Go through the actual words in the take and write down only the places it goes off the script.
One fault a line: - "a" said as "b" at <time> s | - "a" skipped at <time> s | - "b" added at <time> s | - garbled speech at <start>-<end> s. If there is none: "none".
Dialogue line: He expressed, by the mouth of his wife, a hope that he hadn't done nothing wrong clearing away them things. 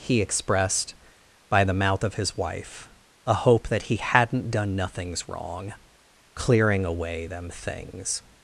- "nothing" said as "nothings" at 4.8 s